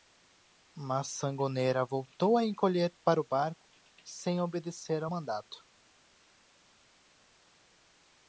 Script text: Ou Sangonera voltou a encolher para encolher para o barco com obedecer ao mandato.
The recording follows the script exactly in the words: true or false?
false